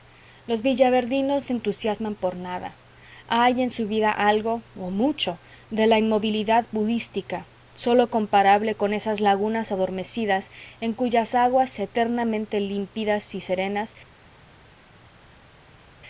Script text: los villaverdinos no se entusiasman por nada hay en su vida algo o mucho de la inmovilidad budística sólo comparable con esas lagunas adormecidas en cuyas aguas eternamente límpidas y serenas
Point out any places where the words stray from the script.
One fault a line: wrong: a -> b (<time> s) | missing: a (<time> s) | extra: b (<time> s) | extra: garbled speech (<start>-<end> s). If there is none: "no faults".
missing: no (1.4 s)